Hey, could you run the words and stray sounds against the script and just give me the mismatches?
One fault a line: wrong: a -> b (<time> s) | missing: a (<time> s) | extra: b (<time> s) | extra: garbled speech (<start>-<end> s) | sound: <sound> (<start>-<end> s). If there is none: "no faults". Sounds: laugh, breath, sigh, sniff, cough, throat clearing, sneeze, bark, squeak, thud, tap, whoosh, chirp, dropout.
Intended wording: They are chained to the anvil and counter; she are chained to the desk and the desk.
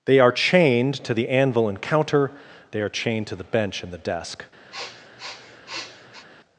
wrong: she -> they (2.7 s)
wrong: desk -> bench (3.4 s)
sound: sniff (4.7-6.3 s)